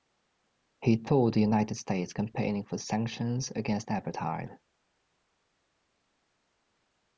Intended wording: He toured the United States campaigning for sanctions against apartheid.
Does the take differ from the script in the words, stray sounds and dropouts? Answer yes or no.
no